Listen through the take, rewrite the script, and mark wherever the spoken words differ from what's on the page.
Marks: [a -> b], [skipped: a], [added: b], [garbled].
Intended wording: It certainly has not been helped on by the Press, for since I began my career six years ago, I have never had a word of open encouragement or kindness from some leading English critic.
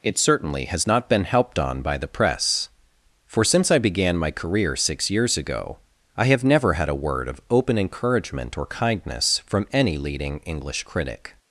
It certainly has not been helped on by the Press, for since I began my career six years ago, I have never had a word of open encouragement or kindness from [some -> any] leading English critic.